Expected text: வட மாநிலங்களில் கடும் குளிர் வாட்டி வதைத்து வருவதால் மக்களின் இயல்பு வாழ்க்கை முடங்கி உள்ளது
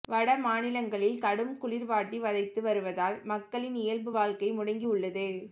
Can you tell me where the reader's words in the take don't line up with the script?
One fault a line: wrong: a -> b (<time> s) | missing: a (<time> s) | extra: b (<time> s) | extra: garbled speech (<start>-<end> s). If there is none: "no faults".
no faults